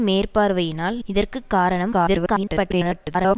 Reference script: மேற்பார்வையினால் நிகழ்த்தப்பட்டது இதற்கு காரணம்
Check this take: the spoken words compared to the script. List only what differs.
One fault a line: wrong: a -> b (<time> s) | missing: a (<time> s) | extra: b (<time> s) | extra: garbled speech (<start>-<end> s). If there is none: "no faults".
missing: நிகழ்த்தப்பட்டது (1.0 s)
extra: garbled speech (1.9-3.4 s)